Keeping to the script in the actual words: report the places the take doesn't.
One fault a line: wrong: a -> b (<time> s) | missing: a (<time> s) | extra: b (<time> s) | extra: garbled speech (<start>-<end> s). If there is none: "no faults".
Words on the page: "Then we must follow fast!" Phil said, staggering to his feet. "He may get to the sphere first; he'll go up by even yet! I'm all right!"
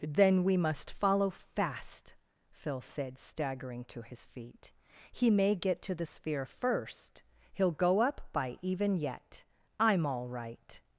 no faults